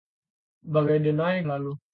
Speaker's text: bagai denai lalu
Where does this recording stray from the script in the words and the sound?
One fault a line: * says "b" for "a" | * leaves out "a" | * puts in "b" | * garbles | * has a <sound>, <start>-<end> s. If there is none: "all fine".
all fine